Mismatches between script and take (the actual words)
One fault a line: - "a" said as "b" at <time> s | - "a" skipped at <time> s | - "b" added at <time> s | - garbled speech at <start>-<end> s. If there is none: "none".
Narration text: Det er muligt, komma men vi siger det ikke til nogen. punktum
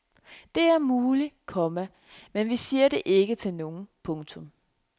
none